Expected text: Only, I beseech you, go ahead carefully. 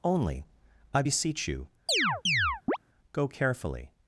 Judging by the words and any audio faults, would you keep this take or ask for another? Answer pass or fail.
fail